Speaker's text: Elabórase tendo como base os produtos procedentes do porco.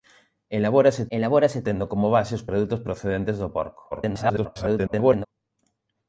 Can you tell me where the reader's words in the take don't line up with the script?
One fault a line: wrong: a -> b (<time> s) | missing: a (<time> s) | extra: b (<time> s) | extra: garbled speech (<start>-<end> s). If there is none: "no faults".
extra: elabórase (1.2 s)
extra: garbled speech (3.9-5.3 s)